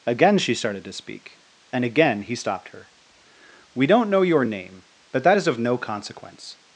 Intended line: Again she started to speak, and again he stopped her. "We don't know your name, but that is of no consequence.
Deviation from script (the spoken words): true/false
false